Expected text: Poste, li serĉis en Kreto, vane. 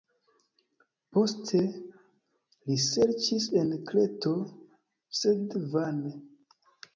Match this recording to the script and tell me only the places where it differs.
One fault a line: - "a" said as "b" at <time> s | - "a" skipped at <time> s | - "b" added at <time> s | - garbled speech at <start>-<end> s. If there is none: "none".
- "sed" added at 5.2 s